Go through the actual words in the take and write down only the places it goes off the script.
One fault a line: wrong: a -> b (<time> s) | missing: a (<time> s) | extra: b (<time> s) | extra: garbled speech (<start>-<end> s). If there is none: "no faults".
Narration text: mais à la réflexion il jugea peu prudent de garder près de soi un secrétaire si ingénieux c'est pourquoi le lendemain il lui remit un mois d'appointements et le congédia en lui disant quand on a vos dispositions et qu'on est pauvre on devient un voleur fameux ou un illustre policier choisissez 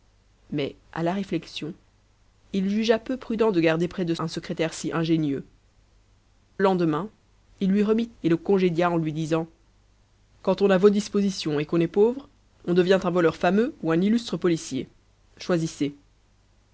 missing: soi (4.2 s)
missing: c'est pourquoi le (5.5 s)
missing: un mois d'appointements (8.1 s)